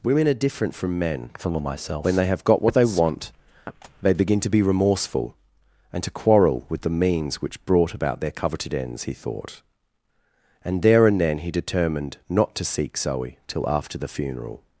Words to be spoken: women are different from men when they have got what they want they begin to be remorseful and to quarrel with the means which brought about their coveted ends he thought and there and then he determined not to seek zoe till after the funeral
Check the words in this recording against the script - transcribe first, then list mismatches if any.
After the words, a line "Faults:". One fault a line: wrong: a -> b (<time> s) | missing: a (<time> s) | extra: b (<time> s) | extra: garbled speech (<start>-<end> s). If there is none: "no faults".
women are different from men from myself when they have got what they want they begin to be remorseful and to quarrel with the means which brought about their coveted ends he thought and there and then he determined not to seek zoe till after the funeral
Faults:
extra: from myself (1.4 s)